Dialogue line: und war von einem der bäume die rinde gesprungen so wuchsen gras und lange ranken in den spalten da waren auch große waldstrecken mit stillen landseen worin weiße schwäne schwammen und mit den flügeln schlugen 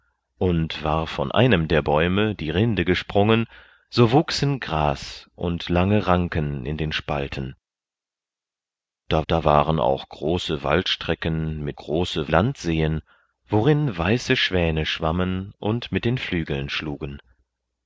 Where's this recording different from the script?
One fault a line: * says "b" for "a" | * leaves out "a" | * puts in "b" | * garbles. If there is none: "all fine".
* puts in "da"
* says "große" for "stillen"